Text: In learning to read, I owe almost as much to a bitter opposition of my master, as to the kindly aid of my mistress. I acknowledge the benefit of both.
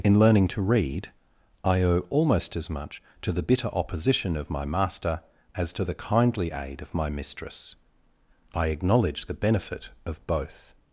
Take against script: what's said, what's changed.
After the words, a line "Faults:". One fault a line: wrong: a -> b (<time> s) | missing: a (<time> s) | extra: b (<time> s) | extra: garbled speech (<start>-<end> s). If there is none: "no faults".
In learning to read, I owe almost as much to the bitter opposition of my master, as to the kindly aid of my mistress. I acknowledge the benefit of both.
Faults:
wrong: a -> the (3.3 s)